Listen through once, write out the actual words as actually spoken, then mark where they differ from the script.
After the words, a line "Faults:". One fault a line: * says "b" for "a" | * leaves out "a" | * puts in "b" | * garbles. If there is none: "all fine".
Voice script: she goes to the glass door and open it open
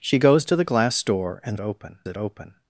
she goes to the glass door and open it open
Faults:
all fine